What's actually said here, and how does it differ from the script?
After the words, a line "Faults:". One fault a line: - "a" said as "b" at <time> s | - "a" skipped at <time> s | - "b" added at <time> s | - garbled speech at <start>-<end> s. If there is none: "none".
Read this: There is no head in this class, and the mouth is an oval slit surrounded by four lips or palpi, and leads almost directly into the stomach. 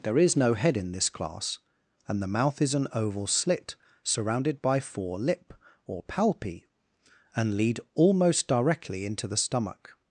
There is no head in this class, and the mouth is an oval slit surrounded by four lip or palpi, and lead almost directly into the stomach.
Faults:
- "lips" said as "lip" at 5.2 s
- "leads" said as "lead" at 7.5 s